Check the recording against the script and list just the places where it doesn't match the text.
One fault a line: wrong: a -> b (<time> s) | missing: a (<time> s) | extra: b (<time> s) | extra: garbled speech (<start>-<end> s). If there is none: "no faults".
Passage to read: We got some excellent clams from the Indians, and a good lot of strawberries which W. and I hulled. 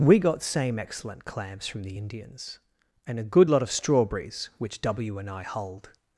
wrong: some -> same (0.4 s)